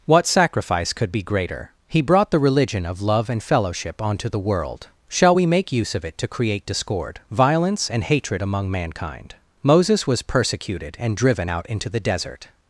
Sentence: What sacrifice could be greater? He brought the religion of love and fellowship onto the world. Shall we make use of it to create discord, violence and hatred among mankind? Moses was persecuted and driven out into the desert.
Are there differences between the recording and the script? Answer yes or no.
no